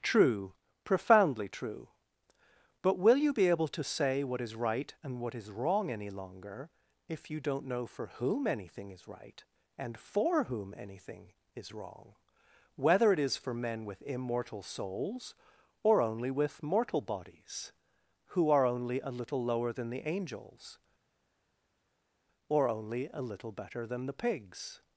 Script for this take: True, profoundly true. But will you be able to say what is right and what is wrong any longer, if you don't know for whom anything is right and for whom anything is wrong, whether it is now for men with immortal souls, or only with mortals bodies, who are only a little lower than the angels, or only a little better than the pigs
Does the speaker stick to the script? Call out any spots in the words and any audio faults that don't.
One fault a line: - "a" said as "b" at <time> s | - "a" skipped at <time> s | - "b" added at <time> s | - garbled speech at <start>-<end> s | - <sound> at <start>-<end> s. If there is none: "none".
- "now" skipped at 13.4 s
- "mortals" said as "mortal" at 16.6 s